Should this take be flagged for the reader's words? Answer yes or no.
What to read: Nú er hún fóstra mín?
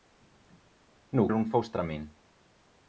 no